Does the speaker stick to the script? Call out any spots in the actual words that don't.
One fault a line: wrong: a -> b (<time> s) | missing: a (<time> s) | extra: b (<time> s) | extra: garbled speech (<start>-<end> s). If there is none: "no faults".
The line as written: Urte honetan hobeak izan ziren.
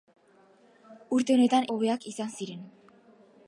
no faults